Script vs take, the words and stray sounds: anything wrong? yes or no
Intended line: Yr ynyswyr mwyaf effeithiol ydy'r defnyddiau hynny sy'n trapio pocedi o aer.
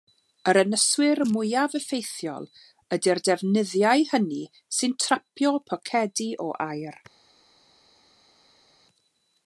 no